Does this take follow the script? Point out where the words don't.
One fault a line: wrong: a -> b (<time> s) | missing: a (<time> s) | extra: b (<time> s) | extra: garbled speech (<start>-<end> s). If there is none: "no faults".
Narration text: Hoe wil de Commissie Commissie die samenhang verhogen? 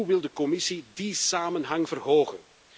missing: Commissie (0.9 s)